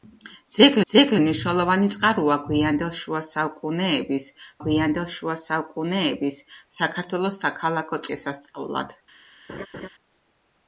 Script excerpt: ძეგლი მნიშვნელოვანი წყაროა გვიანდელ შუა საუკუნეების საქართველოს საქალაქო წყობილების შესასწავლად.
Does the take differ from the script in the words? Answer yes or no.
yes